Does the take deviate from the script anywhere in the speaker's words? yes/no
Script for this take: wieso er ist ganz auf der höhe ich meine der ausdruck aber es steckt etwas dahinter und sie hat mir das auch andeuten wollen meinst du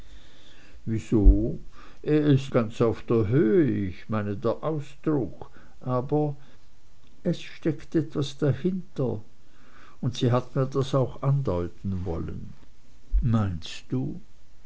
no